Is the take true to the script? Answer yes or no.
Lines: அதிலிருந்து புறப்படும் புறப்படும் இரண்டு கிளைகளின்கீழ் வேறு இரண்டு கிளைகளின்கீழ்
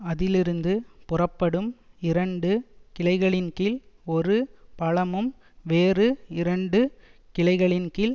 no